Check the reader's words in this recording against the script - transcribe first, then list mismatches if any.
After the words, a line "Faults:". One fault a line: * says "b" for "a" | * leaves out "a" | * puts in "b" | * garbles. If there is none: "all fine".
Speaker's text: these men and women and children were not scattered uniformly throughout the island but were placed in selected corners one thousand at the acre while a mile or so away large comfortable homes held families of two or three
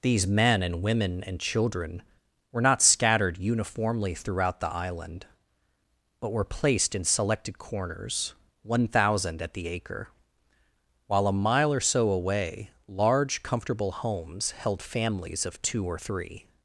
these men and women and children were not scattered uniformly throughout the island but were placed in selected corners one thousand at the acre while a mile or so away large comfortable homes held families of two or three
Faults:
all fine